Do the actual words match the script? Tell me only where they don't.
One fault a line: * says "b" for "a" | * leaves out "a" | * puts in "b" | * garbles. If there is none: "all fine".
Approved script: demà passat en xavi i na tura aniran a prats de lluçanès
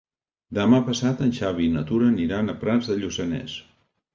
all fine